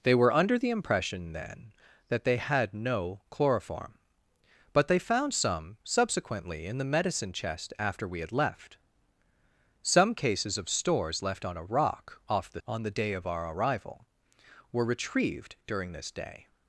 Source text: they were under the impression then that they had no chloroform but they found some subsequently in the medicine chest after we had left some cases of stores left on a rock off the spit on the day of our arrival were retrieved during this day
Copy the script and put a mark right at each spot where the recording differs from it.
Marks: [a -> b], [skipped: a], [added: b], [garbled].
they were under the impression then that they had no chloroform but they found some subsequently in the medicine chest after we had left some cases of stores left on a rock off the [skipped: spit] on the day of our arrival were retrieved during this day